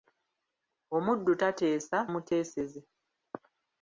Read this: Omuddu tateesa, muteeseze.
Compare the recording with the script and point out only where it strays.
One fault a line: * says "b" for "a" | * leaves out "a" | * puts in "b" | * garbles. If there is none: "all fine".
all fine